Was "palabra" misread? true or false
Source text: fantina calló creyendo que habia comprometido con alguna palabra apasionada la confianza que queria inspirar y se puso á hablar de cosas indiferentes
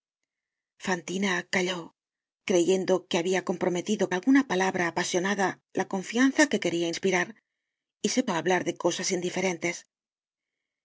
false